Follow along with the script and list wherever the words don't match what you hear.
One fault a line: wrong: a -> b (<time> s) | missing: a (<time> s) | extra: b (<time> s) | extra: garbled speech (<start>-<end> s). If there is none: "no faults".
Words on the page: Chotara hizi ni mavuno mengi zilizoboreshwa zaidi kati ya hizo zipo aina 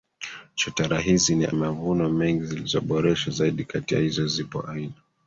no faults